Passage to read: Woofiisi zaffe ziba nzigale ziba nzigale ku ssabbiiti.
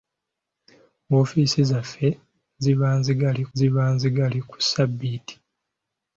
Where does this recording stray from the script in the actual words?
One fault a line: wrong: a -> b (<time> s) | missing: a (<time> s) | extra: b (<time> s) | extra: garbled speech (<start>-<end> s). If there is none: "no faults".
no faults